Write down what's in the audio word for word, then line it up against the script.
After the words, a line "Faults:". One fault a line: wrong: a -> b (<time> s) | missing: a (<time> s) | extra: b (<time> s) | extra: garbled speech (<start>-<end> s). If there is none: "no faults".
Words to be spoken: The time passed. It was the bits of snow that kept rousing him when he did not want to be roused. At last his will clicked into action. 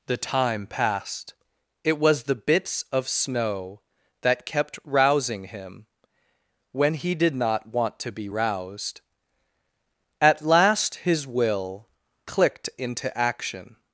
The time passed. It was the bits of snow that kept rousing him when he did not want to be roused. At last his will clicked into action.
Faults:
no faults